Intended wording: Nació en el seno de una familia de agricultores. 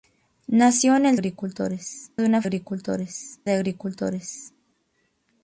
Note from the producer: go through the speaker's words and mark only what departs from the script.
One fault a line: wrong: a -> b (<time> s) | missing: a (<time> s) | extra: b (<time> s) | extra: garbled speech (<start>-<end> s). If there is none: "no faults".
wrong: seno -> agricultores (1.1 s)
wrong: familia -> agricultores (2.4 s)